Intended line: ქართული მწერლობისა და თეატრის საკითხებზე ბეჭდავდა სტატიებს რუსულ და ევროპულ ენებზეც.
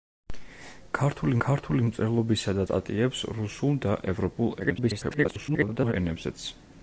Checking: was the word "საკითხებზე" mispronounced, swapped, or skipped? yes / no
yes